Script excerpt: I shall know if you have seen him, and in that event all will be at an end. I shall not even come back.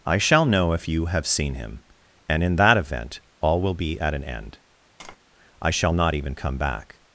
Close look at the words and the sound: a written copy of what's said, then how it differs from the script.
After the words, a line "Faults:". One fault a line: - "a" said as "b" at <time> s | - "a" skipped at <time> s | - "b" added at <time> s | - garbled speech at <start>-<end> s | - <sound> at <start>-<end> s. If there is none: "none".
I shall know if you have seen him, and in that event all will be at an end. I shall not even come back.
Faults:
- tap at 5.0-5.2 s